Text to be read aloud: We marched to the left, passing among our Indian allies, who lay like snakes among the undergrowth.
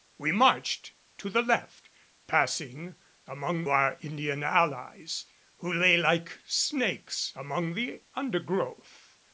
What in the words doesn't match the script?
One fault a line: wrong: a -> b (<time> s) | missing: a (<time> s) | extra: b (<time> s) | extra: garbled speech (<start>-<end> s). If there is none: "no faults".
no faults